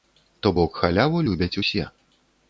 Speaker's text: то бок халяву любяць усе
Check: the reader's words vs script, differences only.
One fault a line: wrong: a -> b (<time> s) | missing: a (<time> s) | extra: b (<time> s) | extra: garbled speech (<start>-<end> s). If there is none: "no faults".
no faults